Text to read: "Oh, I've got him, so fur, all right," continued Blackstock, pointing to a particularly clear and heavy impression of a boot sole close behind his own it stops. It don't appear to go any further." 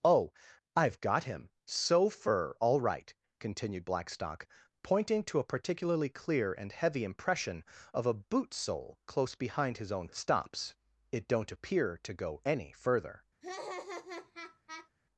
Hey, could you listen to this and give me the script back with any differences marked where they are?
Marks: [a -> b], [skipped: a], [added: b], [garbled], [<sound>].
"Oh, I've got him, so fur, all right," continued Blackstock, pointing to a particularly clear and heavy impression of a boot sole close behind his own it stops. It don't appear to go any further." [laugh]